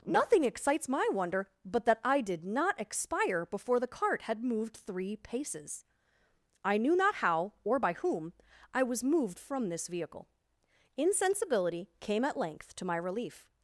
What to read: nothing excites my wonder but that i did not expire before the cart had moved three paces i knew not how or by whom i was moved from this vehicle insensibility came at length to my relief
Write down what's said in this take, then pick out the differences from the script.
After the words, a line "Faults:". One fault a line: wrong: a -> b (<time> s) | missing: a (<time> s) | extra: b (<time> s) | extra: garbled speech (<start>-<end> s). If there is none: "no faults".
nothing excites my wonder but that i did not expire before the cart had moved three paces i knew not how or by whom i was moved from this vehicle insensibility came at length to my relief
Faults:
no faults